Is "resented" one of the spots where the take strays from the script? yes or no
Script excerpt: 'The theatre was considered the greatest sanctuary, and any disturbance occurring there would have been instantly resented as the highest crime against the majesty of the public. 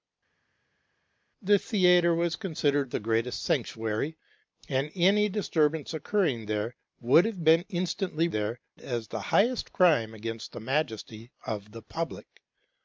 yes